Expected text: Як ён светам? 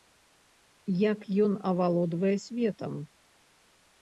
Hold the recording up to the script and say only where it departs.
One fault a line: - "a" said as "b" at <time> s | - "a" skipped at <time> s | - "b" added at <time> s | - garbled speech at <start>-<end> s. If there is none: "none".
- "авалодвае" added at 1.7 s